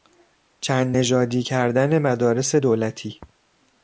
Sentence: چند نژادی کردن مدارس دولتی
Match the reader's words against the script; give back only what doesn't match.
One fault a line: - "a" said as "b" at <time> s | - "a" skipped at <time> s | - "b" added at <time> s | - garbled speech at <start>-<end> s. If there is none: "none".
none